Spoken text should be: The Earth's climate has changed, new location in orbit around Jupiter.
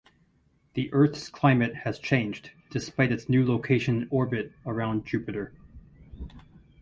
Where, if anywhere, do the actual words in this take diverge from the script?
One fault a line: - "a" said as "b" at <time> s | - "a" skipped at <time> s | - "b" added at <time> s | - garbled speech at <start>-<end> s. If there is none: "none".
- "despite its" added at 2.7 s